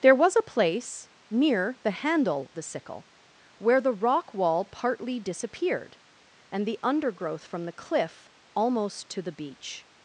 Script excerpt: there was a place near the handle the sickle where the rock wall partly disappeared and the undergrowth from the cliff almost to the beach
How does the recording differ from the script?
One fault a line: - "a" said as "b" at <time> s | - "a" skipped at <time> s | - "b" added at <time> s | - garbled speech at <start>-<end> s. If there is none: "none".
none